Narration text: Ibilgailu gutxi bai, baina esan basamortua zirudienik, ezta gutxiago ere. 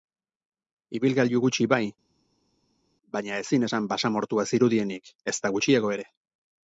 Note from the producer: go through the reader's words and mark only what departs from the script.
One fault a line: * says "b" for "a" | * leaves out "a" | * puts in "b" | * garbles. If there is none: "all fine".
* puts in "ezin"